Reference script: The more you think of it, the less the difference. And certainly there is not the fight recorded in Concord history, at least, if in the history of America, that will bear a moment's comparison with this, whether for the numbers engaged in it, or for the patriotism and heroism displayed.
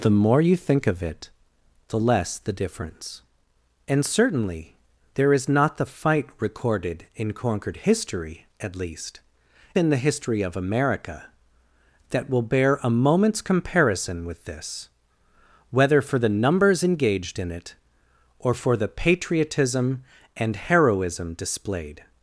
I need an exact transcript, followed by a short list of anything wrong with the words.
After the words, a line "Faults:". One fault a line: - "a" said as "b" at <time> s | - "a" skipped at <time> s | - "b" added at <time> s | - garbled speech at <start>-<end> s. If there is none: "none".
The more you think of it, the less the difference. And certainly there is not the fight recorded in Concord history, at least, in the history of America, that will bear a moment's comparison with this, whether for the numbers engaged in it, or for the patriotism and heroism displayed.
Faults:
- "if" skipped at 9.2 s